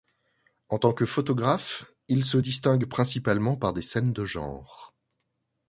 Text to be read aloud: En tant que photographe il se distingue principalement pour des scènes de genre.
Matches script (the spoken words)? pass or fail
fail